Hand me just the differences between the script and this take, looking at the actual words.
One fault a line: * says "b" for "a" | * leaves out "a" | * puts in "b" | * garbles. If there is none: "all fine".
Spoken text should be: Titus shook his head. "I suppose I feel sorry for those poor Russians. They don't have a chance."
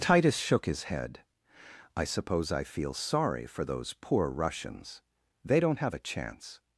all fine